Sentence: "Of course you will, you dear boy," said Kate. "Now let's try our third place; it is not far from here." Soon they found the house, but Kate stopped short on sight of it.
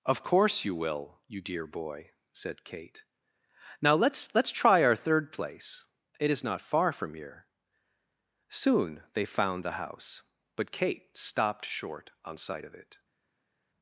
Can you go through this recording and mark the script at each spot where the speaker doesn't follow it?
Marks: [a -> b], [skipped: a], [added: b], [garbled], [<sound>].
"Of course you will, you dear boy," said Kate. "Now let's [added: let's] try our third place; it is not far from here." Soon they found the house, but Kate stopped short on sight of it.